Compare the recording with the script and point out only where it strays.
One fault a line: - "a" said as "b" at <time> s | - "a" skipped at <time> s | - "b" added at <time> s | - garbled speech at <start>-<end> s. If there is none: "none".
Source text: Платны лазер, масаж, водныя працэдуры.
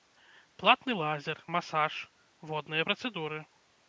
none